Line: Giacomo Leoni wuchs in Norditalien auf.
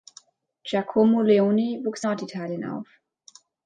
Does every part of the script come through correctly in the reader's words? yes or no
no